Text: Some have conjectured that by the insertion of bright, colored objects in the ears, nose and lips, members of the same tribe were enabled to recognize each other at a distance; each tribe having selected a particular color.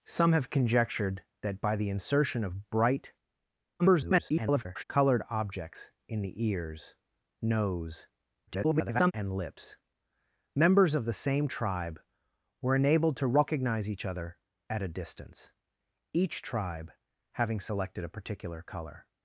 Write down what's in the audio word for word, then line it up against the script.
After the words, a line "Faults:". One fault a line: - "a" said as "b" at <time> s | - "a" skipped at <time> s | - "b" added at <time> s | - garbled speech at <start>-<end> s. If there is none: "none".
Some have conjectured that by the insertion of bright, [garbled] colored objects in the ears, nose [garbled] and lips, members of the same tribe were enabled to recognize each other at a distance; each tribe having selected a particular color.
Faults:
- garbled speech at 3.8-4.8 s
- garbled speech at 8.5-9.1 s